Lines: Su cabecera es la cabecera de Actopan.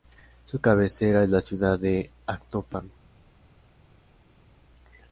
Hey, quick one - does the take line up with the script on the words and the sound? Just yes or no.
no